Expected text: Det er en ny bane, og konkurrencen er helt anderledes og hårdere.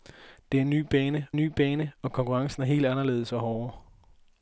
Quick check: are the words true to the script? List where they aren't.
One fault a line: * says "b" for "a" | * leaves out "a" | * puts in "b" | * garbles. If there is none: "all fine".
* puts in "ny bane"